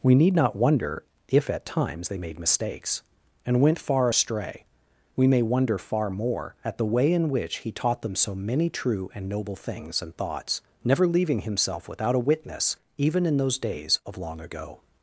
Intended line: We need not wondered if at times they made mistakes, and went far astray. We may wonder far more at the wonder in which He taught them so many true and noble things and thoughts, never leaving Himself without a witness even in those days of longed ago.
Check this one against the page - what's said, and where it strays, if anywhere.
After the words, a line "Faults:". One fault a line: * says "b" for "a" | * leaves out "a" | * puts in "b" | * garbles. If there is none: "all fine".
We need not wonder if at times they made mistakes, and went far astray. We may wonder far more at the way in which He taught them so many true and noble things and thoughts, never leaving Himself without a witness even in those days of long ago.
Faults:
* says "wonder" for "wondered"
* says "way" for "wonder"
* says "long" for "longed"